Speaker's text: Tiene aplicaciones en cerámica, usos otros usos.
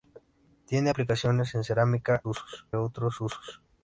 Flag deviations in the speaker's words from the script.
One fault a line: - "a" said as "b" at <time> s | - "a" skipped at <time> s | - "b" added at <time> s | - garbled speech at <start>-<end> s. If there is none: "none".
none